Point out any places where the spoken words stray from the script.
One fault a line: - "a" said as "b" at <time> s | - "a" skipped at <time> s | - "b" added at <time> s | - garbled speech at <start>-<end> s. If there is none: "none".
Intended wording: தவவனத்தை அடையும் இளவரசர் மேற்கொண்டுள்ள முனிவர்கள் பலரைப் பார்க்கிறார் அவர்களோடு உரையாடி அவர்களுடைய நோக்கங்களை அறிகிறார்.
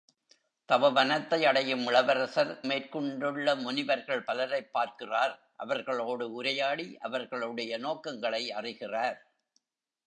none